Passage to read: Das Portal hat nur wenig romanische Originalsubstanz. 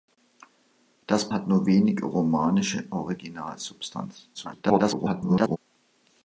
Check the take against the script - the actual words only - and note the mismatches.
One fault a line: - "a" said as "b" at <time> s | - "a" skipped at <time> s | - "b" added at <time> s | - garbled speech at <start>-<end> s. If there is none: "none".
- "Portal" skipped at 1.3 s
- garbled speech at 4.3-5.6 s